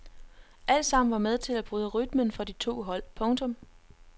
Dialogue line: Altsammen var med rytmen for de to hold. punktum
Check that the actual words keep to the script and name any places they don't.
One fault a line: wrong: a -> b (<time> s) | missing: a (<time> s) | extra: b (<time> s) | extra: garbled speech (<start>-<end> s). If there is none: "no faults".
extra: til at bryde (1.4 s)